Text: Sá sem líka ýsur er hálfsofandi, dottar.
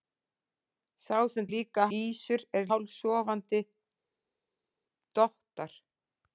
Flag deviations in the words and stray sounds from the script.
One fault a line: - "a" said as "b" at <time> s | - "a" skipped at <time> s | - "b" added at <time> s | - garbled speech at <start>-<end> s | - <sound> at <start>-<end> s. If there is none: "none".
none